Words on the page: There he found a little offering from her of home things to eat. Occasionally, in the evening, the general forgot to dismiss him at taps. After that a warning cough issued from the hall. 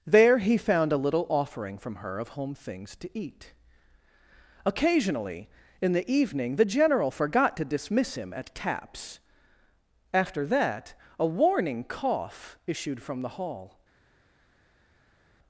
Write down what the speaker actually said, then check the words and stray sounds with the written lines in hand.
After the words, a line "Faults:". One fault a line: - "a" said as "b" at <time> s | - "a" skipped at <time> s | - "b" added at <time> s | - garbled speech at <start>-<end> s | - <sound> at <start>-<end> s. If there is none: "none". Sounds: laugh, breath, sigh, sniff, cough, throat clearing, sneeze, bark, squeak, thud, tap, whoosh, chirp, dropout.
There he found a little offering from her of home things to eat. Occasionally, in the evening, the general forgot to dismiss him at taps. After that a warning cough issued from the hall.
Faults:
none